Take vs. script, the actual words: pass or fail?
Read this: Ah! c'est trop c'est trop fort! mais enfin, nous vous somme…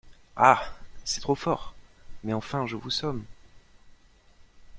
fail